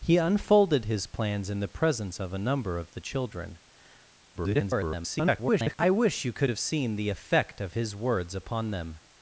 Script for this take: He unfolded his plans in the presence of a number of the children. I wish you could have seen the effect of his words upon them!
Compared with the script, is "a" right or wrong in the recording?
right